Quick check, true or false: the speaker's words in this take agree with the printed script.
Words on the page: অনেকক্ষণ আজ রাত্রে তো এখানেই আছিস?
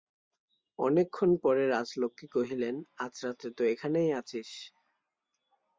false